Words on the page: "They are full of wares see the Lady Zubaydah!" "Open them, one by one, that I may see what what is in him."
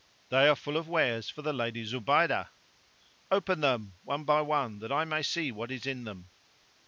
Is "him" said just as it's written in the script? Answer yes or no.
no